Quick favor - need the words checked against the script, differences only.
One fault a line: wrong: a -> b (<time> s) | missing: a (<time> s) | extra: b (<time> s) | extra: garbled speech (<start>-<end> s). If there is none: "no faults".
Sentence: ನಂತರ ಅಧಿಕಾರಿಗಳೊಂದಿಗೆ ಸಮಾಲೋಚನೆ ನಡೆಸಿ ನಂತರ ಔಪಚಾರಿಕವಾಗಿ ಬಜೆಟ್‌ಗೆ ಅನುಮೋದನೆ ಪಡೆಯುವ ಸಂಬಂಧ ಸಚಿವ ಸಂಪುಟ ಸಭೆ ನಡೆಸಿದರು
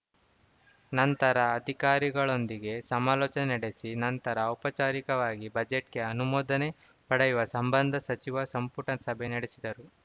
no faults